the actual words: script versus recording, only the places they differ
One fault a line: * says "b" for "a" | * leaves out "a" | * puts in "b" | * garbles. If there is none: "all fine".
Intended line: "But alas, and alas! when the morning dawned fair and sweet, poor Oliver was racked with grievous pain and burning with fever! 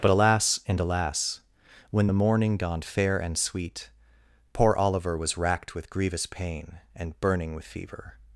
all fine